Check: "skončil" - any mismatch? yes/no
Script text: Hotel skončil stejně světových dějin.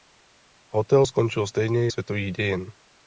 no